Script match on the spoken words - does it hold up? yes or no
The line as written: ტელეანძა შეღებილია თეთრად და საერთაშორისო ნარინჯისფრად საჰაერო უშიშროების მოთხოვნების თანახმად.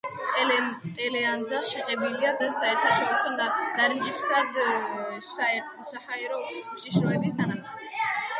no